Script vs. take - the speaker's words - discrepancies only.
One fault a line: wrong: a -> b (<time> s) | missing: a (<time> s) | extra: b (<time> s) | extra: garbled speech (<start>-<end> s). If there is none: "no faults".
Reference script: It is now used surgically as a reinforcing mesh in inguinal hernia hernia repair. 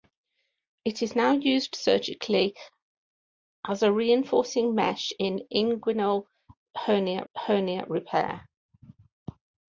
no faults